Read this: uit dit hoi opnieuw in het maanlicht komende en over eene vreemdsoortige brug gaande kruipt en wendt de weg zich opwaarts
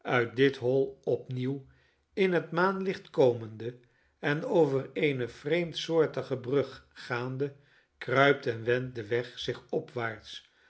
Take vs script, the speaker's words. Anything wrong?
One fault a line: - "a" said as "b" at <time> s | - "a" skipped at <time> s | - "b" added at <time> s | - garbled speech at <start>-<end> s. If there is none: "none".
none